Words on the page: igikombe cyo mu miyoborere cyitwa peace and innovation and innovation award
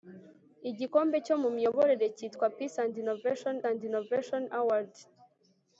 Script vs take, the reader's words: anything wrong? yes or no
no